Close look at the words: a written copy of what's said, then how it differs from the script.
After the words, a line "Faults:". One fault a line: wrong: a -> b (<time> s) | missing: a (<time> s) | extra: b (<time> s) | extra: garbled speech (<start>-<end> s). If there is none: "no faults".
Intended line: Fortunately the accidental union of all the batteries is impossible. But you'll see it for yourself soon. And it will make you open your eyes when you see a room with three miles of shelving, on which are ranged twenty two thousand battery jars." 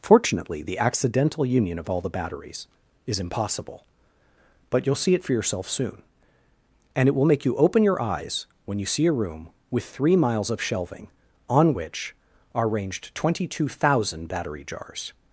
Fortunately the accidental union of all the batteries is impossible. But you'll see it for yourself soon. And it will make you open your eyes when you see a room with three miles of shelving, on which are ranged twenty two thousand battery jars."
Faults:
no faults